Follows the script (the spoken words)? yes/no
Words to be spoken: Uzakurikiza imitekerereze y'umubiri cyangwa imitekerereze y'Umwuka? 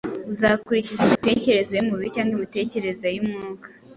yes